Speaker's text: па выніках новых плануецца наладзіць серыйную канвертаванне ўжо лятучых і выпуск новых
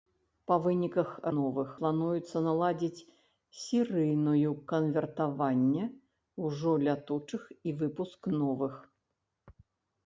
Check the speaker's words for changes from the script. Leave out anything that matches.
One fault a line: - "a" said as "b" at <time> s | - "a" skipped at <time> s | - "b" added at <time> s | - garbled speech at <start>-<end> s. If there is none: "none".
none